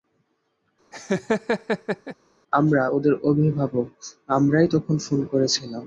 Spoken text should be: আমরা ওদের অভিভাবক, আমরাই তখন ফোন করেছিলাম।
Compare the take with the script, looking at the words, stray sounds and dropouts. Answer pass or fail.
fail